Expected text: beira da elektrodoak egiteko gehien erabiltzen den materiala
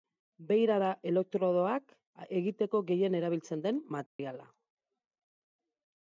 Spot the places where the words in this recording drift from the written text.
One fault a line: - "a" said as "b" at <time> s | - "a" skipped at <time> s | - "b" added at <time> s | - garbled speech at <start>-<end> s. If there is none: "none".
none